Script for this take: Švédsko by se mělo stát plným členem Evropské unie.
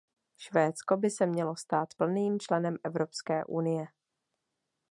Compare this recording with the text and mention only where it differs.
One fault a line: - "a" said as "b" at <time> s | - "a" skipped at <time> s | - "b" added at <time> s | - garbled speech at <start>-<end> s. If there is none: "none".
none